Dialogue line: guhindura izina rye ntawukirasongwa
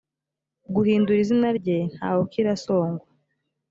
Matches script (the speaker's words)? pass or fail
pass